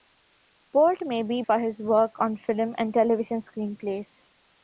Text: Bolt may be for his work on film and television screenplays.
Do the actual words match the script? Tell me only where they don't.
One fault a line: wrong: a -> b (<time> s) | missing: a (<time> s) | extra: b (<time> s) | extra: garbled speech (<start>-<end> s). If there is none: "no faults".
no faults